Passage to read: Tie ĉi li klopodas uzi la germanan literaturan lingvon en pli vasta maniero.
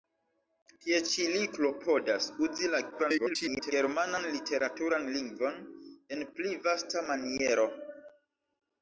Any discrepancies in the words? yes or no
yes